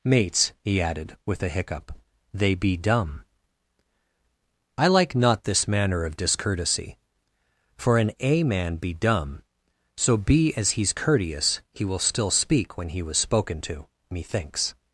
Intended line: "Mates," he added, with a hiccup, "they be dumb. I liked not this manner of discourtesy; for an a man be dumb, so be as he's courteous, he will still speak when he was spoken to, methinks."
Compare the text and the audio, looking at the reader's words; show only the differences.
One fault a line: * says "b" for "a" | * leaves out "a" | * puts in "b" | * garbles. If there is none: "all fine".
* says "like" for "liked"